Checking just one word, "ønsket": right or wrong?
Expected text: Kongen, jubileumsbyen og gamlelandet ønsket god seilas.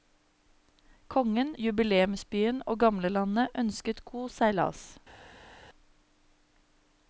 right